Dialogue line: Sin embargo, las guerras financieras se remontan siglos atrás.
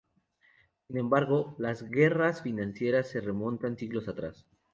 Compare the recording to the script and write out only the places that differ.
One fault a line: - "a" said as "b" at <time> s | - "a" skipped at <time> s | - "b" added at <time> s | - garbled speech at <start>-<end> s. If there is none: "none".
none